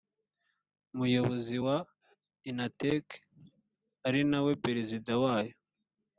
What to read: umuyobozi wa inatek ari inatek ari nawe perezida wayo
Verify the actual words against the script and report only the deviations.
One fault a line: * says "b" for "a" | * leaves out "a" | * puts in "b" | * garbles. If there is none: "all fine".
* leaves out "inatek ari"